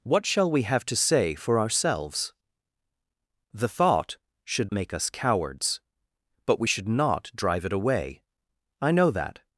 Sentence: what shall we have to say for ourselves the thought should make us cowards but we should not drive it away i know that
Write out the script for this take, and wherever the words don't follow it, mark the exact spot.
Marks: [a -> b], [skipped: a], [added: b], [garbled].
what shall we have to say for ourselves the thought should make us cowards but we should not drive it away i know that